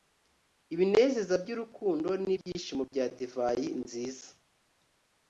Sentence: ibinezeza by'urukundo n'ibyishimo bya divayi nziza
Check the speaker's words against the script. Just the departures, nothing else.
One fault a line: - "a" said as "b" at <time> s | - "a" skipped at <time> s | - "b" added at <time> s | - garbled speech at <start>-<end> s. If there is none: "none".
none